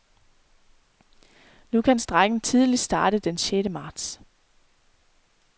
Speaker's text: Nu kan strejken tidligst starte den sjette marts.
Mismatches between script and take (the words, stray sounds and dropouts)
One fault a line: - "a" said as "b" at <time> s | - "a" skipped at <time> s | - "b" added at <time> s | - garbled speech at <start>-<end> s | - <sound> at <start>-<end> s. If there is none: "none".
none